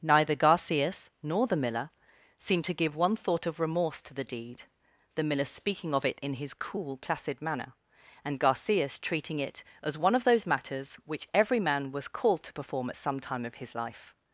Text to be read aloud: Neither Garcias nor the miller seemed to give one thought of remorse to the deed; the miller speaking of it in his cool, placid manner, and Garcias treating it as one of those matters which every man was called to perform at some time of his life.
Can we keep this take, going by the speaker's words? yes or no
yes